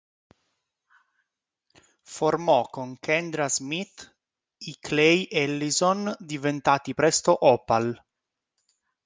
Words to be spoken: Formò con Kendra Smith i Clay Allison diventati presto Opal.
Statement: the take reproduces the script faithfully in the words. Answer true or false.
true